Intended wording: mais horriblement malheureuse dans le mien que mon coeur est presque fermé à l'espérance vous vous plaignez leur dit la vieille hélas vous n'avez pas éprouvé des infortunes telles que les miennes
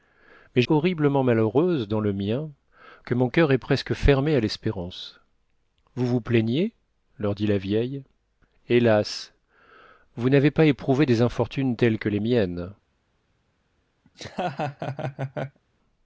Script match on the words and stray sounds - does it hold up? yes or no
no